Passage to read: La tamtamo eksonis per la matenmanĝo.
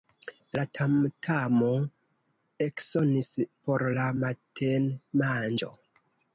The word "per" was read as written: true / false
false